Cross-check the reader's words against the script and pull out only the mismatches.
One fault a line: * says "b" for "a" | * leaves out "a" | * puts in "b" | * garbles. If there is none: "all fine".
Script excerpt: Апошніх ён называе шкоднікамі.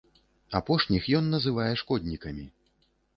all fine